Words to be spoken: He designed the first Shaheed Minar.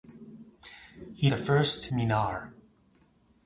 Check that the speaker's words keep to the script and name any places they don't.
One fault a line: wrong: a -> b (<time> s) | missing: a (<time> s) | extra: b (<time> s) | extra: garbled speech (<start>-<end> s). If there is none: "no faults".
missing: designed (1.3 s)
missing: Shaheed (1.9 s)